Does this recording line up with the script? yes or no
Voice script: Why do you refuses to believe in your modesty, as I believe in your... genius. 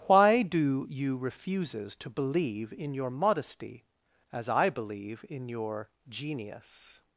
yes